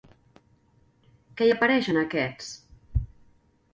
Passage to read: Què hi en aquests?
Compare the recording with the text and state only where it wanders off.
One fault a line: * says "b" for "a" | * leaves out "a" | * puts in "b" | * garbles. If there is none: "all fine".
* puts in "apareix"